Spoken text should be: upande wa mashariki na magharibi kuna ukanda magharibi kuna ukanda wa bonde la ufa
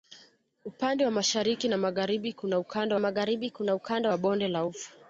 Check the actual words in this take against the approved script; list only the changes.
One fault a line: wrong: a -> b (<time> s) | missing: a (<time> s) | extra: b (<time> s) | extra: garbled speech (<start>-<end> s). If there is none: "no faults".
no faults